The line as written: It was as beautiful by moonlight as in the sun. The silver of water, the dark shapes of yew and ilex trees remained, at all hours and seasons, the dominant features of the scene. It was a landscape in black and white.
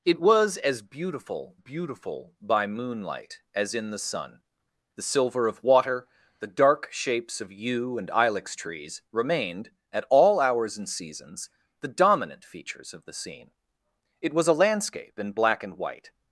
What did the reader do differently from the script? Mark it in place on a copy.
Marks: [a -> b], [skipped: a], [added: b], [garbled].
It was as beautiful [added: beautiful] by moonlight as in the sun. The silver of water, the dark shapes of yew and ilex trees remained, at all hours and seasons, the dominant features of the scene. It was a landscape in black and white.